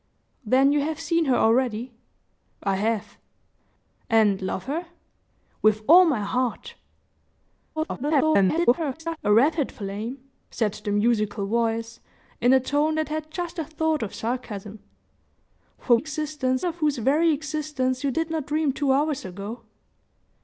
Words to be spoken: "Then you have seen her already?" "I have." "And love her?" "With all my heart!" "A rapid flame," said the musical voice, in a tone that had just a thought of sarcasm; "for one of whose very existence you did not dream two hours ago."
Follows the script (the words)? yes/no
no